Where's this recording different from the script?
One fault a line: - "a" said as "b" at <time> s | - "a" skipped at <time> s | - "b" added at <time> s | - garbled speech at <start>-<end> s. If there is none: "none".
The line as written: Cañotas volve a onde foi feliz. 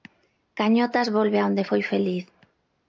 none